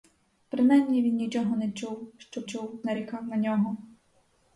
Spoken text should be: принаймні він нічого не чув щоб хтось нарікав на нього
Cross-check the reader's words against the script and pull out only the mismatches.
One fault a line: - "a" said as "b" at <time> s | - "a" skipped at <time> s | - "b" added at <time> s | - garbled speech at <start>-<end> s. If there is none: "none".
- "хтось" said as "чув" at 2.4 s